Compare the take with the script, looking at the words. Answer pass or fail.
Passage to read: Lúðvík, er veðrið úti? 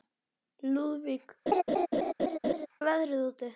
pass